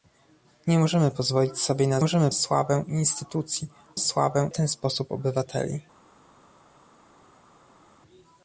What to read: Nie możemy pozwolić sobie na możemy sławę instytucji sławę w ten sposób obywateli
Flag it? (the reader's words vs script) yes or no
no